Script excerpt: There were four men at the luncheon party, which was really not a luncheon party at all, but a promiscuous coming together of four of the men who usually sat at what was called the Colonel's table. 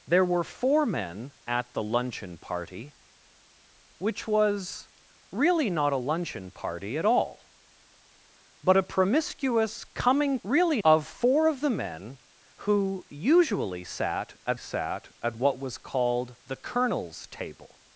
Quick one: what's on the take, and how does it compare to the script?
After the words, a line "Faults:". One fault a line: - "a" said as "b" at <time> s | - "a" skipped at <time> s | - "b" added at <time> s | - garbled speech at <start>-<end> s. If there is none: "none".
There were four men at the luncheon party, which was really not a luncheon party at all, but a promiscuous coming really of four of the men who usually sat at sat at what was called the Colonel's table.
Faults:
- "together" said as "really" at 10.4 s
- "sat at" added at 14.6 s